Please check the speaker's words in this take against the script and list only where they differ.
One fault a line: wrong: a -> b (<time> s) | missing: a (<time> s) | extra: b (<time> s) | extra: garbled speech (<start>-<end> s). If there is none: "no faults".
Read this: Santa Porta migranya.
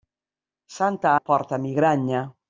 no faults